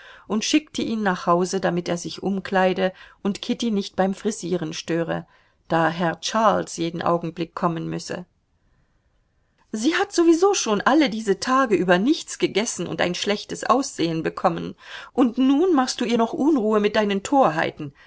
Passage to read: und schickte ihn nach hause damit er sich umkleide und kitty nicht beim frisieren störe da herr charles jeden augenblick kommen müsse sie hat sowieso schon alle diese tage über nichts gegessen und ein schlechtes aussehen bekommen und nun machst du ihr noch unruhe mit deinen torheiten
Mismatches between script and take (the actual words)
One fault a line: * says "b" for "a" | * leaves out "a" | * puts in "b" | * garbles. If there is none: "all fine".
all fine